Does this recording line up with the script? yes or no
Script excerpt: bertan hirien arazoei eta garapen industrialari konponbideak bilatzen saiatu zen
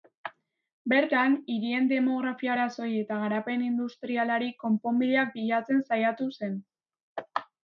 no